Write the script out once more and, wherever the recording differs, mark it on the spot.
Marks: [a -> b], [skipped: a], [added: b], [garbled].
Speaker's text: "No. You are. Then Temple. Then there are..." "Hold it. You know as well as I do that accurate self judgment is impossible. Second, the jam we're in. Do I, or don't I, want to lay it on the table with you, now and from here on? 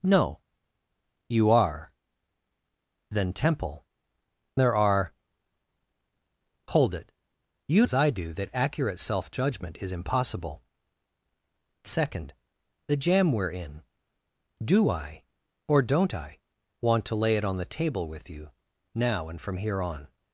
"No. You are. Then Temple. [skipped: Then] there are..." "Hold it. You [skipped: know as well] as I do that accurate self judgment is impossible. Second, the jam we're in. Do I, or don't I, want to lay it on the table with you, now and from here on?